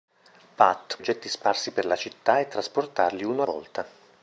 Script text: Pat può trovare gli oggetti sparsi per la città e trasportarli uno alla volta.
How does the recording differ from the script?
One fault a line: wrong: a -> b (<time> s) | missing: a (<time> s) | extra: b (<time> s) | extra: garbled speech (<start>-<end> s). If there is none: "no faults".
missing: può trovare gli (1.0 s)
missing: alla (3.4 s)